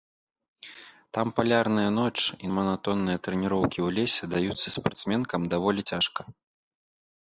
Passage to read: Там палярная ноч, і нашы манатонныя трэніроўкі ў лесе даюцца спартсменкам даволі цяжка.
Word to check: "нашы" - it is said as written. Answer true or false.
false